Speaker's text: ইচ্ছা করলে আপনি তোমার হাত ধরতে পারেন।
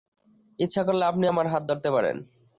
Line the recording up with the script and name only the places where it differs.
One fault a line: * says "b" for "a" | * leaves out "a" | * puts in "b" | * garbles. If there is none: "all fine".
* says "আমার" for "তোমার"